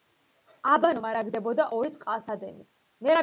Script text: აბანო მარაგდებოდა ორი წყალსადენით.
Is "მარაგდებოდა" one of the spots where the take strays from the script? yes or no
no